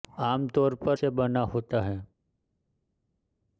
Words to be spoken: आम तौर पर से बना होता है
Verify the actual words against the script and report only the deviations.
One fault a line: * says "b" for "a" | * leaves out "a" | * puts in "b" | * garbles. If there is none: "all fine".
all fine